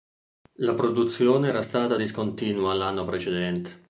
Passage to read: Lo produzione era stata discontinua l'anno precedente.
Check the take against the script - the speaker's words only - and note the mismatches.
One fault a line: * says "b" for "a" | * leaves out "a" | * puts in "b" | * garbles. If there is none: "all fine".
* says "La" for "Lo"